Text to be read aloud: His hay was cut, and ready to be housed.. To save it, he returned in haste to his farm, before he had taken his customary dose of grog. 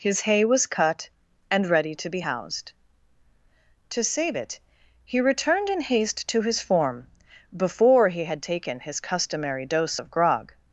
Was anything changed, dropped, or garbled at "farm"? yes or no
yes